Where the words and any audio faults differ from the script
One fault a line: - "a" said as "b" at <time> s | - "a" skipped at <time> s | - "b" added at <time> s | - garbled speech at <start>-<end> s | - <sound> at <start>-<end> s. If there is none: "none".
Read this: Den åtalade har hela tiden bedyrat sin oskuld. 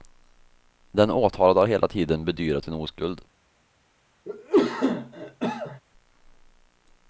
- cough at 4.3-5.8 s